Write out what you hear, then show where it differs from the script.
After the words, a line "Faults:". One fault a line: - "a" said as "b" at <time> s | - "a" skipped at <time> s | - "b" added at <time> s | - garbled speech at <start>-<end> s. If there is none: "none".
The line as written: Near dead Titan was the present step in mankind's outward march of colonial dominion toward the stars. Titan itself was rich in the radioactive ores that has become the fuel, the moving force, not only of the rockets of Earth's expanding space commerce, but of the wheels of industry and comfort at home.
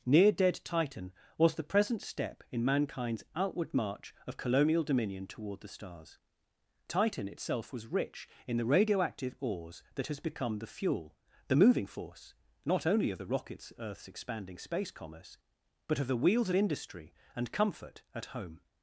Near dead Titan was the present step in mankind's outward march of colonial dominion toward the stars. Titan itself was rich in the radioactive ores that has become the fuel, the moving force, not only of the rockets Earth's expanding space commerce, but of the wheels of industry and comfort at home.
Faults:
- "of" skipped at 13.7 s